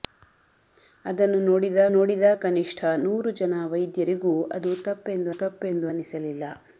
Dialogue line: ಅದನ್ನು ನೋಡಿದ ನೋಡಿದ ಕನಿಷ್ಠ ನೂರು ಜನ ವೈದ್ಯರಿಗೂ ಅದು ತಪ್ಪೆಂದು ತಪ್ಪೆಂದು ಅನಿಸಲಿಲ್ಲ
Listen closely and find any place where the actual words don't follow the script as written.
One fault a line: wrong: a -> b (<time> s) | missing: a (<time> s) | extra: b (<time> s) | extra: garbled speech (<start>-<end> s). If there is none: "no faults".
no faults